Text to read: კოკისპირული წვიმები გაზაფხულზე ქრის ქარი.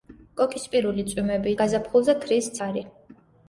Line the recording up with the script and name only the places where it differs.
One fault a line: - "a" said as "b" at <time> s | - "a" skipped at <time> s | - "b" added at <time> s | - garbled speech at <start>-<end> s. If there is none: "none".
none